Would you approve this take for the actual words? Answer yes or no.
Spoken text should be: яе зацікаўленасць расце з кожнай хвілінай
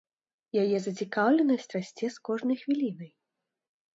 yes